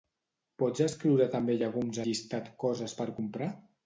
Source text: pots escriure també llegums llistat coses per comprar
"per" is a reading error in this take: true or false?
false